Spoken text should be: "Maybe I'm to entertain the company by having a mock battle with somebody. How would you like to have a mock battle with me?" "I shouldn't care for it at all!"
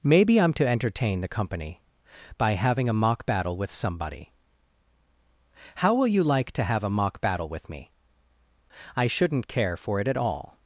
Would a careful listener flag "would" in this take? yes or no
yes